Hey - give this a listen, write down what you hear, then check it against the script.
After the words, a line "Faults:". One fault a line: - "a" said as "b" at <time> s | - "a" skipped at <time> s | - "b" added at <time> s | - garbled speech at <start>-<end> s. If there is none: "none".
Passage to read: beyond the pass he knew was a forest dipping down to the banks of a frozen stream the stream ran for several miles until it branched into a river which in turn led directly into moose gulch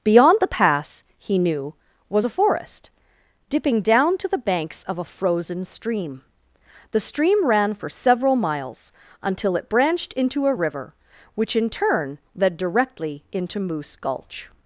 beyond the pass he knew was a forest dipping down to the banks of a frozen stream the stream ran for several miles until it branched into a river which in turn led directly into moose gulch
Faults:
none